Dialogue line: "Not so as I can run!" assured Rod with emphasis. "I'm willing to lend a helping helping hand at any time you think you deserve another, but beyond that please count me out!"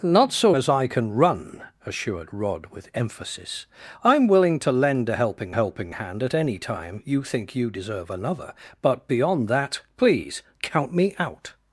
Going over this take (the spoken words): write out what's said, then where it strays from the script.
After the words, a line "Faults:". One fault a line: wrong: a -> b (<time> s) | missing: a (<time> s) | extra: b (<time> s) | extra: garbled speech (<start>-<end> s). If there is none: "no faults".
"Not so as I can run!" assured Rod with emphasis. "I'm willing to lend a helping helping hand at any time you think you deserve another, but beyond that please count me out!"
Faults:
no faults